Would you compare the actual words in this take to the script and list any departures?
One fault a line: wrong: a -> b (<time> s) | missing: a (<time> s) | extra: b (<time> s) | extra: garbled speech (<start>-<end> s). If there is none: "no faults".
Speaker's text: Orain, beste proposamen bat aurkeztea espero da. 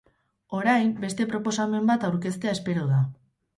no faults